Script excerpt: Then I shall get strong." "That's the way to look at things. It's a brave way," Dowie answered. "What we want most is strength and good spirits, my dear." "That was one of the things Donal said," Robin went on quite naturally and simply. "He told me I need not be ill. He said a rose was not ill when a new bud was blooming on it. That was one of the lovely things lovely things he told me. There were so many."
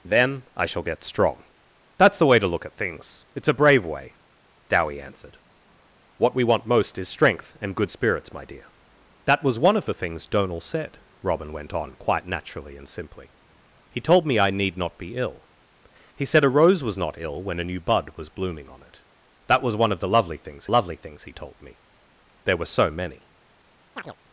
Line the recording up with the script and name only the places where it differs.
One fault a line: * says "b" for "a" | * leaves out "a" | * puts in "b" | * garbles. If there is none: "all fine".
all fine